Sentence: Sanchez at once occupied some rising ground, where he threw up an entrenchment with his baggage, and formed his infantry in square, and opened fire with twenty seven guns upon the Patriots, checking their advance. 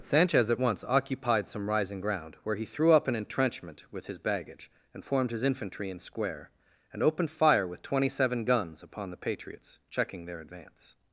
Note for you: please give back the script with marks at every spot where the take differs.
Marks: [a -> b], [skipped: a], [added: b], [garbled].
Sanchez at once occupied some rising ground, where he threw up an entrenchment with his baggage, and formed his infantry in square, and opened fire with twenty seven guns upon the Patriots, checking their advance.